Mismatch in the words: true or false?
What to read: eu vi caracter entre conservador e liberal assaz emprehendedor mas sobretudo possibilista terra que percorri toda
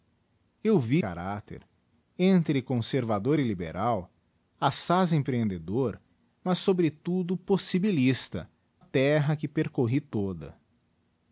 false